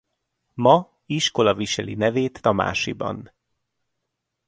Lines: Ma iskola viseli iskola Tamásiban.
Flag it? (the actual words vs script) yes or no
yes